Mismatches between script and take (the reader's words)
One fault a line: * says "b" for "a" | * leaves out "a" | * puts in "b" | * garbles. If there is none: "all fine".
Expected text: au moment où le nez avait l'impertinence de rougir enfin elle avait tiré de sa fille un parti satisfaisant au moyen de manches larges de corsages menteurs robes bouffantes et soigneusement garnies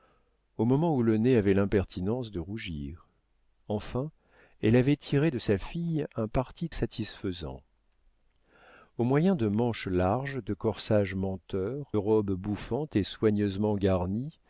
all fine